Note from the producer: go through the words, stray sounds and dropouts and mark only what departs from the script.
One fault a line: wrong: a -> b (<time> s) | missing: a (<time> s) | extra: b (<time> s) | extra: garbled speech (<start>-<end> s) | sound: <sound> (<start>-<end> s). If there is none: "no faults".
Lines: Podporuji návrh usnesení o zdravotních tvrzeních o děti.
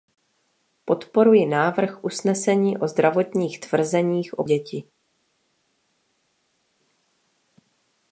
no faults